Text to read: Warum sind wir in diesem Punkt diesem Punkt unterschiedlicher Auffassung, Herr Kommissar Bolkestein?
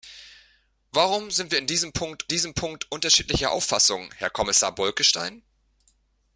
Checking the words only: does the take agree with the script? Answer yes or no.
yes